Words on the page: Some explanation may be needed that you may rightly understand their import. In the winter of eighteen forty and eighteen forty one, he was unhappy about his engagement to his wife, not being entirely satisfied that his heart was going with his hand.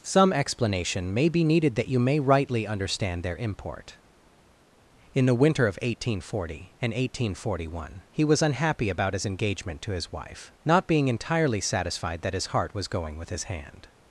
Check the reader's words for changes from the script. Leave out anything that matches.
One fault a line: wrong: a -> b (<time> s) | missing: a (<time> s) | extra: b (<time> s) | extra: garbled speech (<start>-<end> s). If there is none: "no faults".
no faults